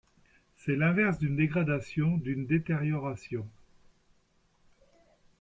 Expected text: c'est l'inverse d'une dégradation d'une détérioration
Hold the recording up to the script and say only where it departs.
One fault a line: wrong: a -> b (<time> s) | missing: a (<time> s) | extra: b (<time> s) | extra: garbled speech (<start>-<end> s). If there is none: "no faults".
no faults